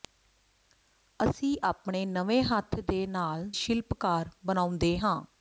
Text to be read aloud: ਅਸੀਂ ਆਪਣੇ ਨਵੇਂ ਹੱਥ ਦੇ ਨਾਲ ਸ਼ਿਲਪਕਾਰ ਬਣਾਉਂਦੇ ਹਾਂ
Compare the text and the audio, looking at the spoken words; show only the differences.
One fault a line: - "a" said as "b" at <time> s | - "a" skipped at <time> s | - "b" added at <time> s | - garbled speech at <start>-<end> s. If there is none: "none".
none